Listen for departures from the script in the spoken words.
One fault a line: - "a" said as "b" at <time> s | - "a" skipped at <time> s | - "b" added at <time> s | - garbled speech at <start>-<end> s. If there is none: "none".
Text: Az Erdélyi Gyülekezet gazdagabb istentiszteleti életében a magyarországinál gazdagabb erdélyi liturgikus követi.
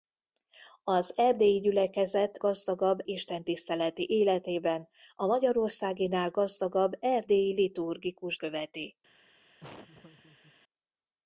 none